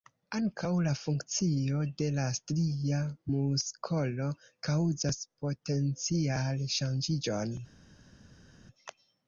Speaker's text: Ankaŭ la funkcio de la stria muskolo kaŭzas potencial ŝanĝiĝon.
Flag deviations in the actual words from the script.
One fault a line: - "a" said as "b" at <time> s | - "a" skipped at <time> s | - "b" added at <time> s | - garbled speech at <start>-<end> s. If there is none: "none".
none